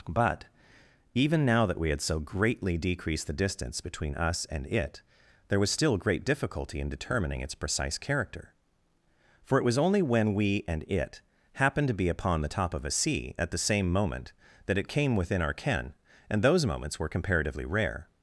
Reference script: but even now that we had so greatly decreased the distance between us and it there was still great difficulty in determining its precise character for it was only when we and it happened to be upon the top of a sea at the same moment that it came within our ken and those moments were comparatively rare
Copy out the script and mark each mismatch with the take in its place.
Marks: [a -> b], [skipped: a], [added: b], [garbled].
but even now that we had so greatly decreased the distance between us and it there was still great difficulty in determining its precise character for it was only when we and it happened to be upon the top of a sea at the same moment that it came within our ken and those moments were comparatively rare